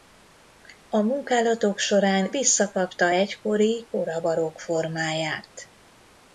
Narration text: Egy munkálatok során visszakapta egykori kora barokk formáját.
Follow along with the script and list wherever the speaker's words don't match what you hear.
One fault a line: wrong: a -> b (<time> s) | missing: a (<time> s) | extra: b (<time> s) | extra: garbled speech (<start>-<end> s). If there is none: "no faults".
wrong: Egy -> A (0.9 s)